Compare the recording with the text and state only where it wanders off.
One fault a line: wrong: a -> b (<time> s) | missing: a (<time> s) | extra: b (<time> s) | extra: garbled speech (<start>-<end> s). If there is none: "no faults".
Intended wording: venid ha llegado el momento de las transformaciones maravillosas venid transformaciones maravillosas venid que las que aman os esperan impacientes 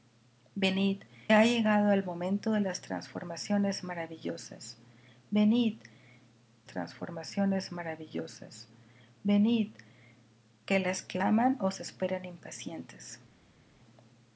no faults